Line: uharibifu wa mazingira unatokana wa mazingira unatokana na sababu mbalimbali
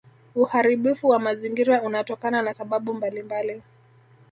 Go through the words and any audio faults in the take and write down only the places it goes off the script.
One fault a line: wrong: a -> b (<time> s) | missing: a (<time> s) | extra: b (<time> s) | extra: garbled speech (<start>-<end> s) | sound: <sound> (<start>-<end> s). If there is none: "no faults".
missing: wa mazingira unatokana (2.4 s)